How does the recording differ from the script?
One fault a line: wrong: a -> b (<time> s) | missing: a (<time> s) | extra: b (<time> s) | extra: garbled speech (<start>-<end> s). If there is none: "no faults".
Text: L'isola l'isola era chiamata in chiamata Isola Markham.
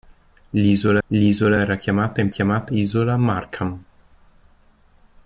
no faults